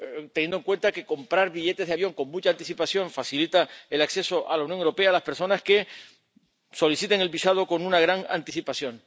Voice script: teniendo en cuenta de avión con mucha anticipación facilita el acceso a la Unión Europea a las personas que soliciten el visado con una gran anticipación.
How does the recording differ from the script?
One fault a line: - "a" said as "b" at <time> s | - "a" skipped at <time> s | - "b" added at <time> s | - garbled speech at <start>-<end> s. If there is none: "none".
- "que comprar billetes" added at 0.9 s